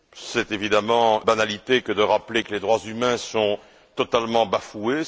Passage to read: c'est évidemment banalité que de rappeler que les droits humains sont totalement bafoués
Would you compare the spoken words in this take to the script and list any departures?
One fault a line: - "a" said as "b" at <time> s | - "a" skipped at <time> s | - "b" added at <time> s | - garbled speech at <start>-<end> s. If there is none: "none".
none